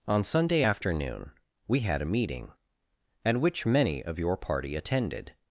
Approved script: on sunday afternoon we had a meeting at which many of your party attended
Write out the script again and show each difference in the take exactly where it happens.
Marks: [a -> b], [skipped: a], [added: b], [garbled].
on sunday afternoon we had a meeting at which many of your party attended